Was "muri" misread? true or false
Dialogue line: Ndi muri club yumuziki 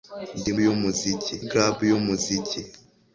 true